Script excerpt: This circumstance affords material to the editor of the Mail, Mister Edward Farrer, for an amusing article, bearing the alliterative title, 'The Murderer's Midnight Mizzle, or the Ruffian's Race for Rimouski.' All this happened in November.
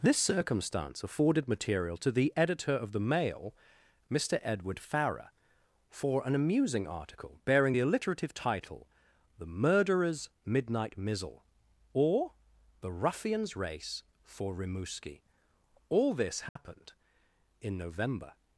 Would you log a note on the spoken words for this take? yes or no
yes